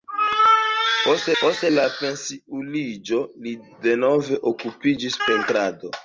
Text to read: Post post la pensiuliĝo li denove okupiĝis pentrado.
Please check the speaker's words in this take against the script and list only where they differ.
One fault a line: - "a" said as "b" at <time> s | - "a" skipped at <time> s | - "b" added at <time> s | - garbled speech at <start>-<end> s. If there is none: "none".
none